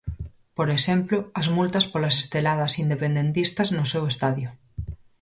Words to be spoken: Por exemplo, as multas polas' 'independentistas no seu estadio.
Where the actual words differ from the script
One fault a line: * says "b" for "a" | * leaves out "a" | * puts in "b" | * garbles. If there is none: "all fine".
* puts in "esteladas"